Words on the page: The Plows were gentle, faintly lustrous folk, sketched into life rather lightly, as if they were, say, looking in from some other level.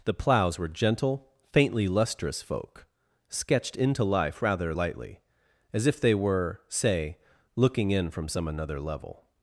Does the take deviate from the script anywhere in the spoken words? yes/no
yes